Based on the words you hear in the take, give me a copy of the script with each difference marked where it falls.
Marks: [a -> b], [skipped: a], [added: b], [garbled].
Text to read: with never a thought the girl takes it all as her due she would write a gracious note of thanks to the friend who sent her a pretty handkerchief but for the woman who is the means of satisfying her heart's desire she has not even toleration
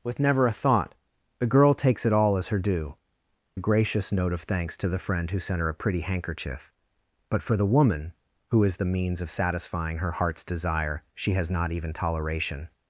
with never a thought the girl takes it all as her due [skipped: she would write] a gracious note of thanks to the friend who sent her a pretty handkerchief but for the woman who is the means of satisfying her heart's desire she has not even toleration